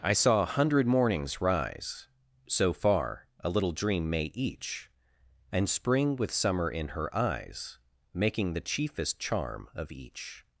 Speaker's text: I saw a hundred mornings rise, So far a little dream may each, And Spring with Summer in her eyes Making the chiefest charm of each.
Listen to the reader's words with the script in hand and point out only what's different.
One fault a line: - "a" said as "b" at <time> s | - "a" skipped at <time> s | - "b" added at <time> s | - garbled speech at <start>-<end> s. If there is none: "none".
none